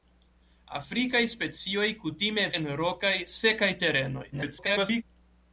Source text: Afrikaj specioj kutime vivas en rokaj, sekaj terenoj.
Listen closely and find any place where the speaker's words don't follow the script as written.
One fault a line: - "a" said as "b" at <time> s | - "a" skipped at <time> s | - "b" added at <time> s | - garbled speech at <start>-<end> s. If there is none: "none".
- "vivas" skipped at 2.5 s
- garbled speech at 4.3-5.0 s